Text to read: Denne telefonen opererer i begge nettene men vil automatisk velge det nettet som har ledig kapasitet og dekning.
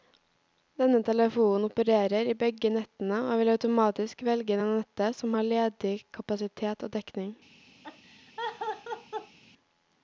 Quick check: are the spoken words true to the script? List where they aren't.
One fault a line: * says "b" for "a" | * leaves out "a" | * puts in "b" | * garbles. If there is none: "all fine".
* says "og" for "men"